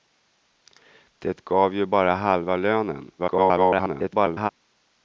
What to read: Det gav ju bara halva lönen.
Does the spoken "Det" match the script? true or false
true